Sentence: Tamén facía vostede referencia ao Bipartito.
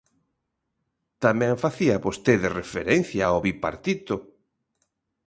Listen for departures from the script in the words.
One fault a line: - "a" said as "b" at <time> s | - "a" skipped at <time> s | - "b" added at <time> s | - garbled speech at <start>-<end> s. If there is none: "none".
none